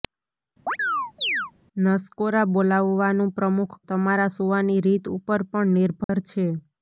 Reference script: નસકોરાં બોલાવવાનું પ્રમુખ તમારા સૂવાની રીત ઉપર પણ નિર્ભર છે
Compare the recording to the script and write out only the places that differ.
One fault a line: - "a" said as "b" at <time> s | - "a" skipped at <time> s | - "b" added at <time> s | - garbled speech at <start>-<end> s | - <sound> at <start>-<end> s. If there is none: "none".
- chirp at 0.7-1.5 s
- dropout at 6.0-6.1 s